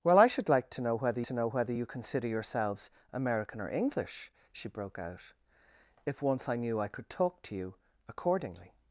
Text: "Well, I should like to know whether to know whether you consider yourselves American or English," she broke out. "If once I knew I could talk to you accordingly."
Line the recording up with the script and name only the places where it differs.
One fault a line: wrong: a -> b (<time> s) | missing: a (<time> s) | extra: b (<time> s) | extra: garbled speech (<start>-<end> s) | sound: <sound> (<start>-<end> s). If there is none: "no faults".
no faults